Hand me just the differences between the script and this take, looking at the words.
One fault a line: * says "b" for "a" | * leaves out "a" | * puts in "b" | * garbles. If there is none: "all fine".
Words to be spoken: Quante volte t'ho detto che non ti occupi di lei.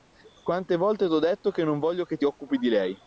* puts in "voglio che"